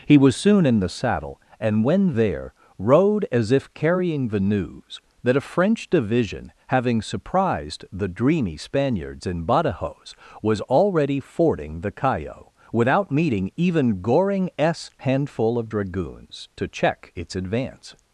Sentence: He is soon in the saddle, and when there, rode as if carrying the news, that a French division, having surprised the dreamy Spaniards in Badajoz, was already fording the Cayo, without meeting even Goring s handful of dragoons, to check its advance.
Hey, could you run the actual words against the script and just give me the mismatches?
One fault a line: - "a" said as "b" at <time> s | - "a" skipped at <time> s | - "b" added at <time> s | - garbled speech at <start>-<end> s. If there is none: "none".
- "is" said as "was" at 0.2 s